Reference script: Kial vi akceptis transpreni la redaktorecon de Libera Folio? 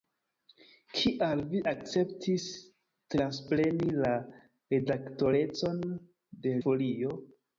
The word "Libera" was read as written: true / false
false